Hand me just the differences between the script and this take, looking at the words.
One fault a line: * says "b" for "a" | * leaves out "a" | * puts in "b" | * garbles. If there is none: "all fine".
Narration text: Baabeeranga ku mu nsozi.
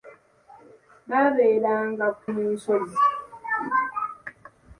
all fine